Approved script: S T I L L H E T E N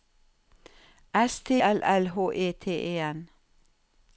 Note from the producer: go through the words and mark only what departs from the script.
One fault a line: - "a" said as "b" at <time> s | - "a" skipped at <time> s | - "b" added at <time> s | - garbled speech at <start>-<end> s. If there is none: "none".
- "I" skipped at 1.5 s